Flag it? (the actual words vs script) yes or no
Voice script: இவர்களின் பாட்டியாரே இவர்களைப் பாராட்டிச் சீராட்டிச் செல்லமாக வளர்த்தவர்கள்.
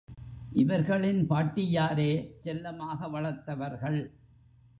yes